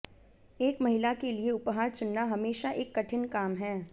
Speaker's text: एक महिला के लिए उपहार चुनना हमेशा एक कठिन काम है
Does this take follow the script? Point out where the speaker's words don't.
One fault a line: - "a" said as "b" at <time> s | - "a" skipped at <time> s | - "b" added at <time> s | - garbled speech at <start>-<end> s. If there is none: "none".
none